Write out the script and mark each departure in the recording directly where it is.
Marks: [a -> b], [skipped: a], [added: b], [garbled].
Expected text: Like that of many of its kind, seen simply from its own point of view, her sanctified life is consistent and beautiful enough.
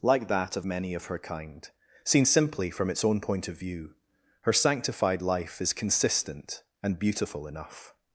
Like that of many of [its -> her] kind, seen simply from its own point of view, her sanctified life is consistent and beautiful enough.